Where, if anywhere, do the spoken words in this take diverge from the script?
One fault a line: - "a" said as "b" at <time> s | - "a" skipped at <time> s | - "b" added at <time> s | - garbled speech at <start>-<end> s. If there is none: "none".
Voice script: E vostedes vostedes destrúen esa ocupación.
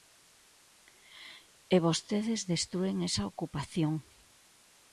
- "vostedes" skipped at 2.4 s